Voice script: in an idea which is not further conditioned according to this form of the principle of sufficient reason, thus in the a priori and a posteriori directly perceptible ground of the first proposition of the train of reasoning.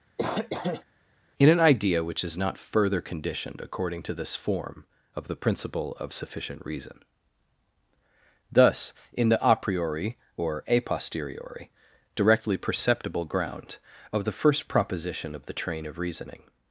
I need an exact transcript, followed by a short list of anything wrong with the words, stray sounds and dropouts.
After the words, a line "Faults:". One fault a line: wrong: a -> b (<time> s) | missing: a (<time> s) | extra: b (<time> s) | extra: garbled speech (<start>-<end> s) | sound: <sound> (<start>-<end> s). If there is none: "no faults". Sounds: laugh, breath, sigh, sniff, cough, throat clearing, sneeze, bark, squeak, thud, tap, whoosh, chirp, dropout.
in an idea which is not further conditioned according to this form of the principle of sufficient reason, thus in the a priori or a posteriori directly perceptible ground of the first proposition of the train of reasoning.
Faults:
sound: cough (0.2-0.8 s)
wrong: and -> or (10.4 s)